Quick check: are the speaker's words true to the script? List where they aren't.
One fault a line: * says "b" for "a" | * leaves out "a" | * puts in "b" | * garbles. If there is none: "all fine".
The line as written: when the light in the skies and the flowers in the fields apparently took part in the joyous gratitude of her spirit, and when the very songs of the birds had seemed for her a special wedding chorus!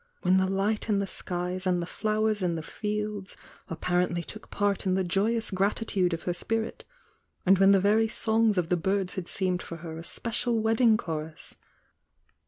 all fine